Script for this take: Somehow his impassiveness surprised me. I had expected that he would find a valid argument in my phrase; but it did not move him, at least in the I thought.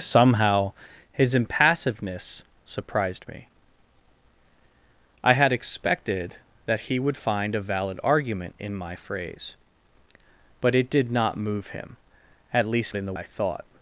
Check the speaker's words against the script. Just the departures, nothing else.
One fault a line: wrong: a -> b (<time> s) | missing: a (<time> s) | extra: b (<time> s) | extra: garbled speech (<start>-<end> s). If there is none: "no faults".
no faults